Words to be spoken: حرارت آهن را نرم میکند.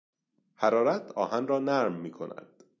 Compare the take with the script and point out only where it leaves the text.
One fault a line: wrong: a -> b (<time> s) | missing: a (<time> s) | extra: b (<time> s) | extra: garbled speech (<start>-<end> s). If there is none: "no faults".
no faults